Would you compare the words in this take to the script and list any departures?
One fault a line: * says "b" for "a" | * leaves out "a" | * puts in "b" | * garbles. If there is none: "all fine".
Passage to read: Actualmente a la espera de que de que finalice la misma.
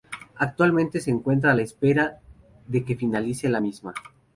* puts in "se encuentra"
* leaves out "de que"